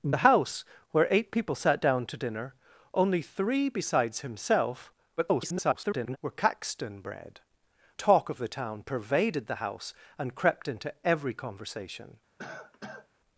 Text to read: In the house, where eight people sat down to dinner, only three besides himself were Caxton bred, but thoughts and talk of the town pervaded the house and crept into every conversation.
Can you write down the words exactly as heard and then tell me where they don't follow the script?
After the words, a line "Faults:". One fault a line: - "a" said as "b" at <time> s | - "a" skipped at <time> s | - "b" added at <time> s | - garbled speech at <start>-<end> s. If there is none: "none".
In the house, where eight people sat down to dinner, only three besides himself [garbled] were Caxton bred, talk of the town pervaded the house and crept into every conversation.
Faults:
- garbled speech at 5.2-6.2 s
- "but thoughts and" skipped at 7.4 s